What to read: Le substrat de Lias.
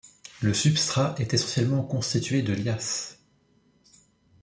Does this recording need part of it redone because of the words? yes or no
yes